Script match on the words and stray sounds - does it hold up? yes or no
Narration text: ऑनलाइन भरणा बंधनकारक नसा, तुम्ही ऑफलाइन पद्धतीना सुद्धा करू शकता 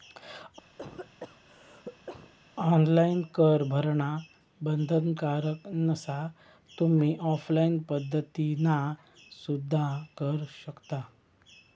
no